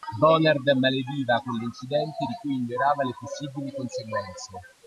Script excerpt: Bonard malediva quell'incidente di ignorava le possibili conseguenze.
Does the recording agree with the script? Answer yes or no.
no